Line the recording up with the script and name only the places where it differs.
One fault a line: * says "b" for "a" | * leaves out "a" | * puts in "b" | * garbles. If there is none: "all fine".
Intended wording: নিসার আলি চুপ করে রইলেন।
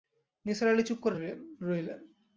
all fine